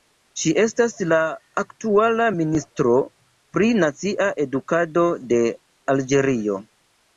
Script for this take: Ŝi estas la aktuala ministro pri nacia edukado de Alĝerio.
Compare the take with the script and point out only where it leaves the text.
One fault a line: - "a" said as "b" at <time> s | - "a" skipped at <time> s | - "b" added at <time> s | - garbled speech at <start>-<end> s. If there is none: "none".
none